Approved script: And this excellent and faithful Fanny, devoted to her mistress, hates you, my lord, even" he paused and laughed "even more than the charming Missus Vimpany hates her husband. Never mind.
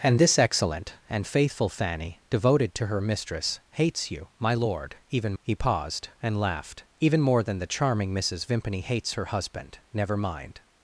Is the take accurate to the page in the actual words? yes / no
yes